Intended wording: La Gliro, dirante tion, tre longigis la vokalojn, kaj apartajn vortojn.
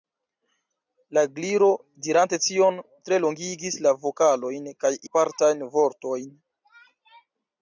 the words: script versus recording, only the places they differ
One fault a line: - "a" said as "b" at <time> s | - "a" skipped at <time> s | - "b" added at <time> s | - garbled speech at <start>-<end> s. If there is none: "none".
none